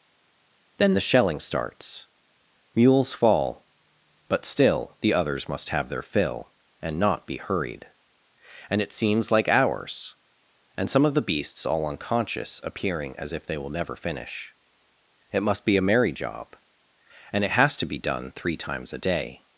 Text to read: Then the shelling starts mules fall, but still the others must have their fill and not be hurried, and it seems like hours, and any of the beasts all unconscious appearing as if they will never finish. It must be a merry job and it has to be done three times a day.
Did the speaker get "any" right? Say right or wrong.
wrong